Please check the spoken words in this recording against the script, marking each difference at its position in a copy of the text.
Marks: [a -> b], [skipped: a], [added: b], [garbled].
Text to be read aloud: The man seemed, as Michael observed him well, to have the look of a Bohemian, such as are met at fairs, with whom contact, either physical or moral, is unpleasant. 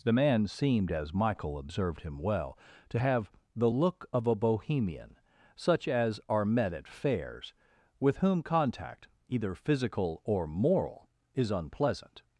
The man seemed, as Michael observed him well, to have the look of a Bohemian, such as are met at fairs, with whom contact, either physical or moral, is unpleasant.